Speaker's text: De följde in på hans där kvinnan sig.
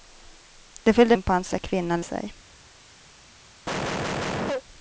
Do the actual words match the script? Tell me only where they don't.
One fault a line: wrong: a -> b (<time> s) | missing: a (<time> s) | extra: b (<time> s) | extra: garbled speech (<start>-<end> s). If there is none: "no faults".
no faults